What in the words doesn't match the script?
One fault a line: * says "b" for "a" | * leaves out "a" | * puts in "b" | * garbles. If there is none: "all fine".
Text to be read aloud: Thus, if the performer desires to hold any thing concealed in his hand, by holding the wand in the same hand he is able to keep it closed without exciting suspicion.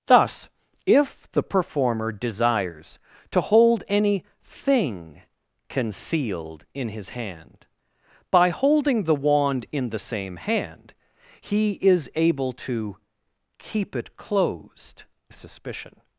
* leaves out "without exciting"